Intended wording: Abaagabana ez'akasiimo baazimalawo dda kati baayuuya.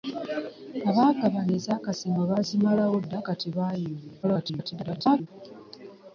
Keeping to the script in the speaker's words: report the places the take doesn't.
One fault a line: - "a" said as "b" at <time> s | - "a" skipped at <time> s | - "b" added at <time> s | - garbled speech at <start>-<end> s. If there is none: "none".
- garbled speech at 4.2-5.3 s